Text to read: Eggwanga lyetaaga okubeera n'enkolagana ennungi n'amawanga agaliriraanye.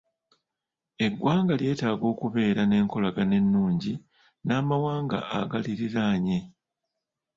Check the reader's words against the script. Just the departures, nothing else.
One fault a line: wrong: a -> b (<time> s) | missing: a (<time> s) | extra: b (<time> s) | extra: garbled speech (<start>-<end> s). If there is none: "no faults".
no faults